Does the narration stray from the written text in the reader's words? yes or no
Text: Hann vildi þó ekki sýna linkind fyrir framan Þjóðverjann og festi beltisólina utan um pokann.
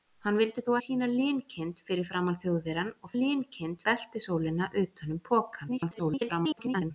yes